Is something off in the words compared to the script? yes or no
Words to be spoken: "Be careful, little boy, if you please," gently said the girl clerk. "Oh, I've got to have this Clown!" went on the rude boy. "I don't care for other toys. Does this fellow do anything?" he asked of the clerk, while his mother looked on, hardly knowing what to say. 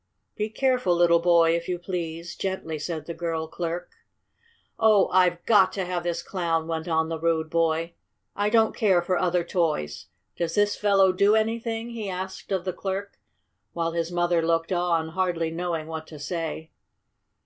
no